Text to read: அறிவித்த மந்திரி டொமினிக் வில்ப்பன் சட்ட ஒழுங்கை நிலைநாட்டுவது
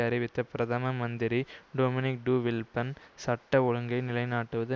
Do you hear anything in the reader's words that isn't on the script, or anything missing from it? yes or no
yes